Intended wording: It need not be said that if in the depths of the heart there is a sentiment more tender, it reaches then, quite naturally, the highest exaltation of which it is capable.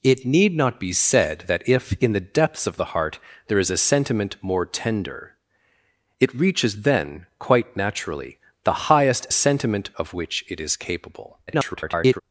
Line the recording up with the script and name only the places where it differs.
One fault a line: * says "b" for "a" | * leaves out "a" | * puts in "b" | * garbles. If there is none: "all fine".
* says "sentiment" for "exaltation"
* garbles